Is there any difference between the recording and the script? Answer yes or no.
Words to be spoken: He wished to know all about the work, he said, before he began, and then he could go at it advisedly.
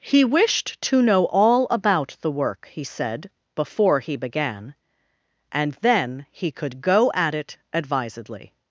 no